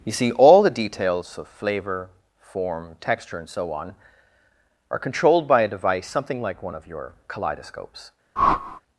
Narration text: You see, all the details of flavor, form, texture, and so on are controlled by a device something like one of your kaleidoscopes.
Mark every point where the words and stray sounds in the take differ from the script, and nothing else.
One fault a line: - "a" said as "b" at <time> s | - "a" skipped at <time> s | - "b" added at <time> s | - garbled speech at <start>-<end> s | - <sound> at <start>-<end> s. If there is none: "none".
- whoosh at 8.4-8.8 s